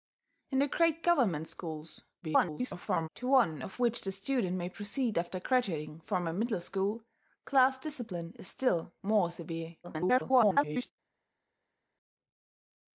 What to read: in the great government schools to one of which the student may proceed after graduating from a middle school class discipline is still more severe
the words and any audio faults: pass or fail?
fail